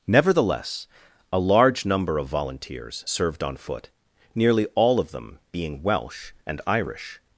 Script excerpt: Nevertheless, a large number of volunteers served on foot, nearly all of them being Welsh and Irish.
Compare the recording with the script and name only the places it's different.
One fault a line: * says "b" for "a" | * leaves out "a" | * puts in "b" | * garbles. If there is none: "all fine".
all fine